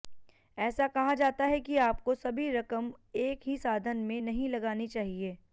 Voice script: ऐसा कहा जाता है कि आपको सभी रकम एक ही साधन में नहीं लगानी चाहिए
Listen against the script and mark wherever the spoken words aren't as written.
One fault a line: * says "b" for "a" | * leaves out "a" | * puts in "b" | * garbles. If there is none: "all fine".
all fine